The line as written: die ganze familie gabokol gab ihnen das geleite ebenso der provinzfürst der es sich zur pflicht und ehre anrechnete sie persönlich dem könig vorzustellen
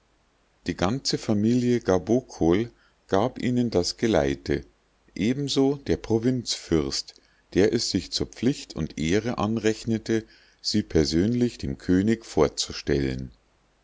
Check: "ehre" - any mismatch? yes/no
no